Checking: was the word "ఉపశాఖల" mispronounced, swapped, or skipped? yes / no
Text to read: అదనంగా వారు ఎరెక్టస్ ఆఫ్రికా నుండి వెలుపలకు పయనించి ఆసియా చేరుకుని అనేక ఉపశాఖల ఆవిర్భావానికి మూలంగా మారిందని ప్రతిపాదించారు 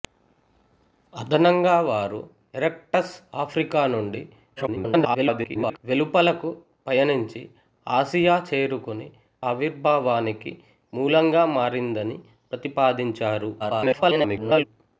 yes